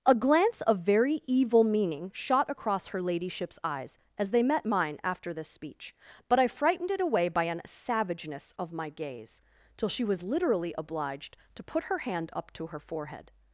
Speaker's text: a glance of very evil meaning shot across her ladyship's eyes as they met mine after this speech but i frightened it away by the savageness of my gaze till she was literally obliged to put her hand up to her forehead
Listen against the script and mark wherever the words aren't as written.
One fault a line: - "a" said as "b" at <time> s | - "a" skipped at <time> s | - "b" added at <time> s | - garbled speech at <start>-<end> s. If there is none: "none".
- "the" said as "an" at 7.4 s